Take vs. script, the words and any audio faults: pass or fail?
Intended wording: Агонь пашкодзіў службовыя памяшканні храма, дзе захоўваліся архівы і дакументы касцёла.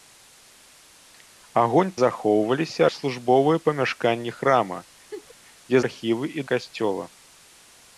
fail